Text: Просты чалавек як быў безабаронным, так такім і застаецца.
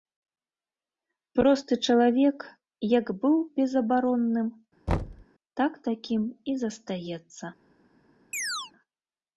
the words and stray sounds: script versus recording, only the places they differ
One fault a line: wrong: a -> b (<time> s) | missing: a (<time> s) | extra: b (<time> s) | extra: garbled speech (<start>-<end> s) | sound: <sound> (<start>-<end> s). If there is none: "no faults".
sound: thud (4.9-5.3 s)
sound: chirp (8.3-8.7 s)